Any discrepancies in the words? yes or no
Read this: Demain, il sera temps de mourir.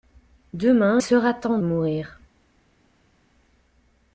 yes